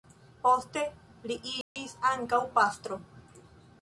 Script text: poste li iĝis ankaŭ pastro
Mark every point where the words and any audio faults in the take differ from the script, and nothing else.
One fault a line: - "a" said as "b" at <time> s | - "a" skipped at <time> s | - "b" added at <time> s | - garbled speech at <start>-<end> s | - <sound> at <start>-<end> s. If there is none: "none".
- dropout at 1.6-1.8 s